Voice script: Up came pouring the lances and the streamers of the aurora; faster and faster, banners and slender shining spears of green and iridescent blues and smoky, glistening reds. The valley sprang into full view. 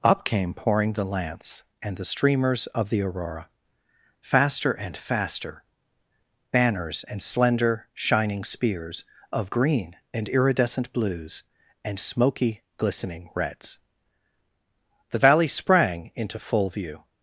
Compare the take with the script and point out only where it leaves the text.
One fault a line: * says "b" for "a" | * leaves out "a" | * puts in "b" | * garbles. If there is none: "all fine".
* says "lance" for "lances"